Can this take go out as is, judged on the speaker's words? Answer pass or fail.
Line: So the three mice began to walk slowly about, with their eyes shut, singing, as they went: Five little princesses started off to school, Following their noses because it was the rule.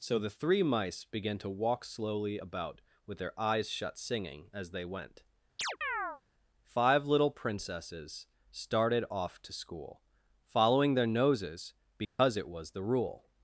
pass